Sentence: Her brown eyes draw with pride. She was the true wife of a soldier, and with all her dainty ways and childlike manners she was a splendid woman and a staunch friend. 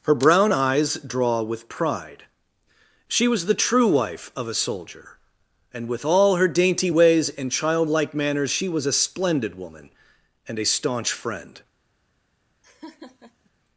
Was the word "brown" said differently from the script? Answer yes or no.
no